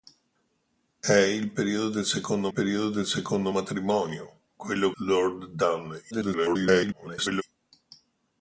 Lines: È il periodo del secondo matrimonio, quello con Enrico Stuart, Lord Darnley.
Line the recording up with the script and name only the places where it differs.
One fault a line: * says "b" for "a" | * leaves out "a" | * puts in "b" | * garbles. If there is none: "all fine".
* says "periodo del secondo matrimonio quello" for "matrimonio quello con Enrico Stuart"
* garbles